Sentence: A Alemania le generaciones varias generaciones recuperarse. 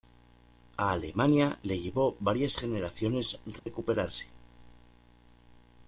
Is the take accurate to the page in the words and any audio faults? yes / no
no